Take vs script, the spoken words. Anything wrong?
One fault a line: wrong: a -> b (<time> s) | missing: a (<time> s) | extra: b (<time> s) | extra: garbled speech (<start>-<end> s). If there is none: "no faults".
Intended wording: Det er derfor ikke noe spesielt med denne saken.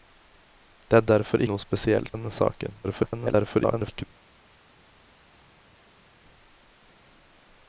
missing: ikke (1.4 s)
missing: med (2.2 s)
extra: garbled speech (2.8-4.1 s)